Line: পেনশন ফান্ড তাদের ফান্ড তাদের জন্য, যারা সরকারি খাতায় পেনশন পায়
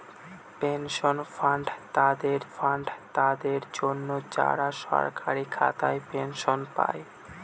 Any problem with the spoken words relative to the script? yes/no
no